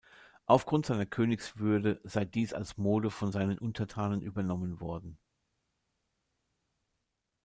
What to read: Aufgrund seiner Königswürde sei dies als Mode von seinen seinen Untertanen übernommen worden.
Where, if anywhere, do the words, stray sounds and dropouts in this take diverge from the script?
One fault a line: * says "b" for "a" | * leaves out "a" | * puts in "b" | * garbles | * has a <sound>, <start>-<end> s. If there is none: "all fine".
* leaves out "seinen"